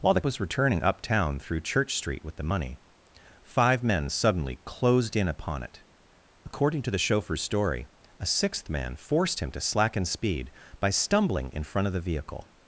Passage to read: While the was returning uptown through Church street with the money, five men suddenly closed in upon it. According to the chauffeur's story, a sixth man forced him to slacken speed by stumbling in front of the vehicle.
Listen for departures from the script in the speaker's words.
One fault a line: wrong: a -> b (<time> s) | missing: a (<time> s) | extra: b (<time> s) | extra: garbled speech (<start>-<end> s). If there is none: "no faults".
no faults